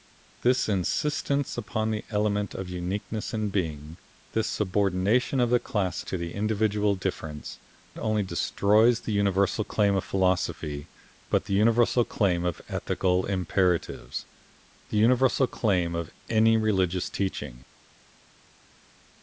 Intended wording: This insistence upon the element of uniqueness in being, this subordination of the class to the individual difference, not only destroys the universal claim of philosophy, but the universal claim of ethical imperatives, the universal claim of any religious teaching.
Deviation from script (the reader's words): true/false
true